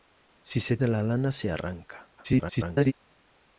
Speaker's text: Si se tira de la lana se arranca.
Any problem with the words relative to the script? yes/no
yes